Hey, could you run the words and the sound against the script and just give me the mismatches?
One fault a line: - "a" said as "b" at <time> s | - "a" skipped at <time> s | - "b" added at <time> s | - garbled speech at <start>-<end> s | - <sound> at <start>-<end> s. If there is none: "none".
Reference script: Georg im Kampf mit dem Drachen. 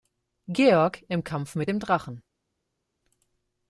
none